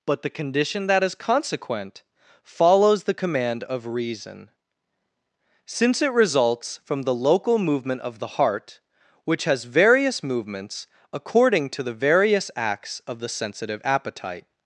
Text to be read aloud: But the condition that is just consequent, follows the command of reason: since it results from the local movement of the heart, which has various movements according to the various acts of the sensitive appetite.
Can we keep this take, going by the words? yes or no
no